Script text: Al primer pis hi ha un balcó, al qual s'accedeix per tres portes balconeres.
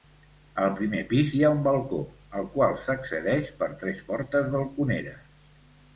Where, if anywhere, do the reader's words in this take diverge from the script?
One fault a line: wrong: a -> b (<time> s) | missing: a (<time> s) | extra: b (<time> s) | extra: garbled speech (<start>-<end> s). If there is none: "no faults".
no faults